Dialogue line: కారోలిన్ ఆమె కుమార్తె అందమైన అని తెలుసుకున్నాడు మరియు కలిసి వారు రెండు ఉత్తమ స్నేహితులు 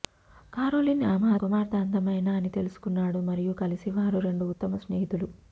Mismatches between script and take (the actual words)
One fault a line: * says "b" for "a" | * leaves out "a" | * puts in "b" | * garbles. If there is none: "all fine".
all fine